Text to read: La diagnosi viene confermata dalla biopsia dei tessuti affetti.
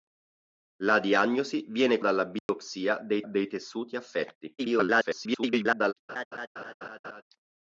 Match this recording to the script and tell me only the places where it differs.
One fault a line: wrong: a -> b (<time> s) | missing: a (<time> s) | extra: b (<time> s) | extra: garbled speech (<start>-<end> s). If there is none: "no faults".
missing: confermata (2.0 s)
extra: dei (3.2 s)
extra: garbled speech (4.6-5.9 s)